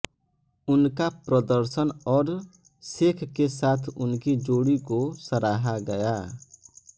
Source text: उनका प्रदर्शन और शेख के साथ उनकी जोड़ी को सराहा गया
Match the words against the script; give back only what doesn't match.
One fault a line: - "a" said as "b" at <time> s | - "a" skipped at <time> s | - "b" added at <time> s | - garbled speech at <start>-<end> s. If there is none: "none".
none